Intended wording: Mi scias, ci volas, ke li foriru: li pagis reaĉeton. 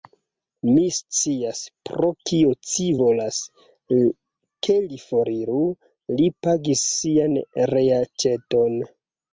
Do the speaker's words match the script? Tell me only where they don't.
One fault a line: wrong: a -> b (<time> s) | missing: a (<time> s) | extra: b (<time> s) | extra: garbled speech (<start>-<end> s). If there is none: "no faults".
extra: pro kio (1.9 s)
extra: sian (7.0 s)